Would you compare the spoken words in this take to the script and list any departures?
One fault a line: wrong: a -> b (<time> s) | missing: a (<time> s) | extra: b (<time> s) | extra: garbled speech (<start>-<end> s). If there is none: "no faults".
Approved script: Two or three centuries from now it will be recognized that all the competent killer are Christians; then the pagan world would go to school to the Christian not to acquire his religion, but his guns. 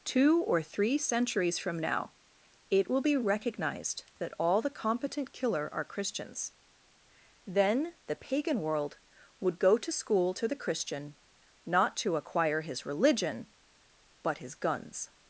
no faults